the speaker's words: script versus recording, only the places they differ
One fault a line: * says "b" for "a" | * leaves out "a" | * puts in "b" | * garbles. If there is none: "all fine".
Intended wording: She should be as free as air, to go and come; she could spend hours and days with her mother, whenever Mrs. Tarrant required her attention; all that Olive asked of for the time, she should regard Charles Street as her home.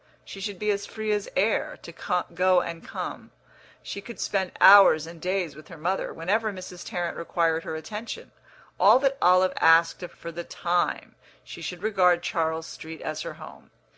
all fine